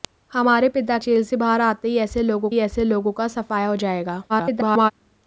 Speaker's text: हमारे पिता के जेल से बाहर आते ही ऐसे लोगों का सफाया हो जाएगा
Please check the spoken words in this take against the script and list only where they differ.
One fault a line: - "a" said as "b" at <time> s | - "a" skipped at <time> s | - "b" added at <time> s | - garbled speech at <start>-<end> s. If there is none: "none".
- "के" skipped at 1.0 s
- "ही ऐसे लोगों" added at 2.5 s
- garbled speech at 4.3-4.9 s